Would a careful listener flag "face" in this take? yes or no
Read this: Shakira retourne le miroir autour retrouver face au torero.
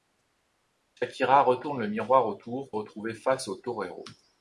no